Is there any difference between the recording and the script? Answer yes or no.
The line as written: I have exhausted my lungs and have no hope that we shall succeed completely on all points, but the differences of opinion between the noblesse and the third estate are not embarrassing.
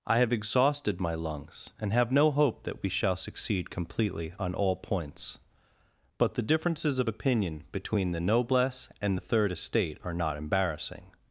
no